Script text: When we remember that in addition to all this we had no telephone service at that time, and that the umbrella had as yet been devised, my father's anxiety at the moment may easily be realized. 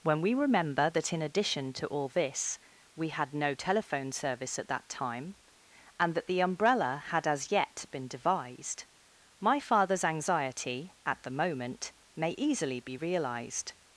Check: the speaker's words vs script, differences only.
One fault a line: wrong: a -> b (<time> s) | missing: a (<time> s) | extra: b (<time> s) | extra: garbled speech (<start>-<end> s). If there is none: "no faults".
no faults